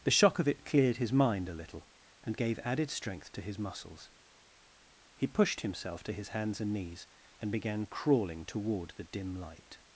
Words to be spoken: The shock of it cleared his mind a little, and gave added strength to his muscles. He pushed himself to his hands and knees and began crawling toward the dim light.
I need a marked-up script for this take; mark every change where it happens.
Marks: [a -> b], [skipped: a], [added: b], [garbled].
The shock of it cleared his mind a little, and gave added strength to his muscles. He pushed himself to his hands and knees and began crawling toward the dim light.